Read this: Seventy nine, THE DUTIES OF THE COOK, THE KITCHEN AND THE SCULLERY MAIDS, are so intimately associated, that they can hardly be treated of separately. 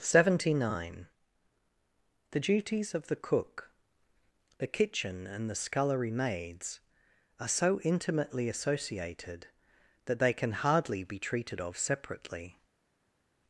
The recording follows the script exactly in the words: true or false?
true